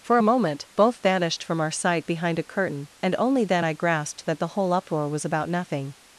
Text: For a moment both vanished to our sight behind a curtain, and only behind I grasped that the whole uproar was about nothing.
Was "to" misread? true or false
true